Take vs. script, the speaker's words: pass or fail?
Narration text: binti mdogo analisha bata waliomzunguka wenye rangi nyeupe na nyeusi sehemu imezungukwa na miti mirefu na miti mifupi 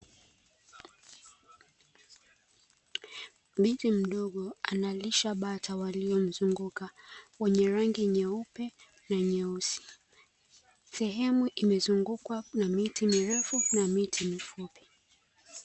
pass